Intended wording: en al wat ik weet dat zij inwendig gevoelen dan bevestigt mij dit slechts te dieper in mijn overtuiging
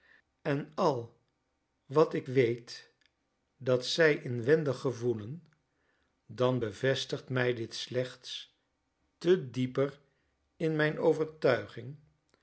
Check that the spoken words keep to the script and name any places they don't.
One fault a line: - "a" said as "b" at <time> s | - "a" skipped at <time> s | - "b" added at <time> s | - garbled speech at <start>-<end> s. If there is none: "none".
none